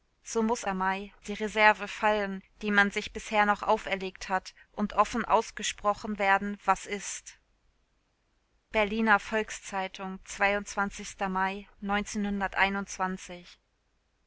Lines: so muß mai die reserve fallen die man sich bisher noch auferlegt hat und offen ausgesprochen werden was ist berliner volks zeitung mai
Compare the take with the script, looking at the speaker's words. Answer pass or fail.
pass